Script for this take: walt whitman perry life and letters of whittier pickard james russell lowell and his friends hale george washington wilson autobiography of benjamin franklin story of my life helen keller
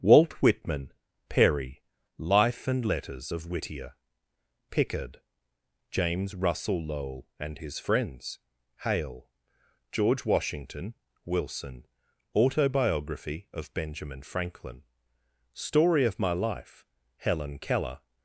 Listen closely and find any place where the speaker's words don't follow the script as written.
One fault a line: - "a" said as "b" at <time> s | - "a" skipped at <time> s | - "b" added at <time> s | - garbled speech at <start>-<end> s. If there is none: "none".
none